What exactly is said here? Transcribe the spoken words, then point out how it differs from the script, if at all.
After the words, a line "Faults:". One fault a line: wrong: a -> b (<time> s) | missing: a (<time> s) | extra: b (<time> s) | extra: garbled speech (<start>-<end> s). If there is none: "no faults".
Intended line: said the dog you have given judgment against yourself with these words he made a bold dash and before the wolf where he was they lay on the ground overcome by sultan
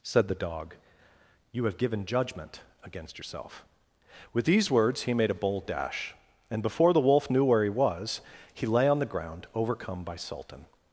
said the dog you have given judgment against yourself with these words he made a bold dash and before the wolf knew where he was he lay on the ground overcome by sultan
Faults:
extra: knew (7.3 s)
wrong: they -> he (8.5 s)